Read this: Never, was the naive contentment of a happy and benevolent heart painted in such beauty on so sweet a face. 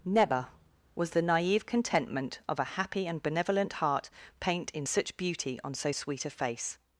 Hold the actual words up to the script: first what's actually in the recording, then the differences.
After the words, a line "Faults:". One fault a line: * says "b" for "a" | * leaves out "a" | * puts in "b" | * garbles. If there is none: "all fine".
Never, was the naive contentment of a happy and benevolent heart paint in such beauty on so sweet a face.
Faults:
* says "paint" for "painted"